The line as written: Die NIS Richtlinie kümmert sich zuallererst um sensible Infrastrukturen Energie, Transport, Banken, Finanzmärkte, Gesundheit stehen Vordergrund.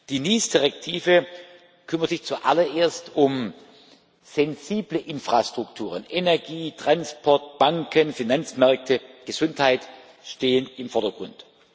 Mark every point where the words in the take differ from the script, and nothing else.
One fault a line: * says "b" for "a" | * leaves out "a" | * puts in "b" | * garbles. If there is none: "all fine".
* puts in "im"